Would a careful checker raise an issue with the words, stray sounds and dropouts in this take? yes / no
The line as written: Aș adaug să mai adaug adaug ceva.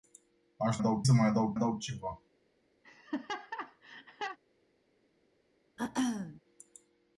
yes